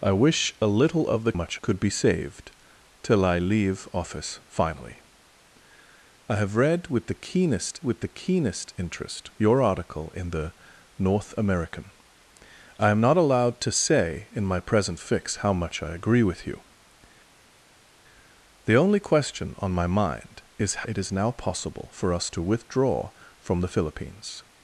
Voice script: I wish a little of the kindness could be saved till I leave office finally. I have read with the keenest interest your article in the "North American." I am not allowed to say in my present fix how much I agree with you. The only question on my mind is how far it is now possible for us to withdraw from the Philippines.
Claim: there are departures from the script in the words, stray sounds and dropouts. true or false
true